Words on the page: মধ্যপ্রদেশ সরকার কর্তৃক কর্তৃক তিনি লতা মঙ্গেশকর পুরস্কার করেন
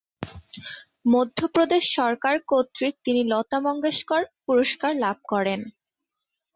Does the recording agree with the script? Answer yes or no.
no